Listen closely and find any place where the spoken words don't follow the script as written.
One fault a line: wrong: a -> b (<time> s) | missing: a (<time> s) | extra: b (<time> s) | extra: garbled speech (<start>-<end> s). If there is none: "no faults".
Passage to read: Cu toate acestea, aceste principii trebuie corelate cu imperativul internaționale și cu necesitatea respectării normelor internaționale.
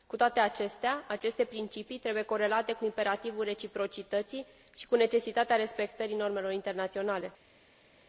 wrong: internaționale -> reciprocității (3.4 s)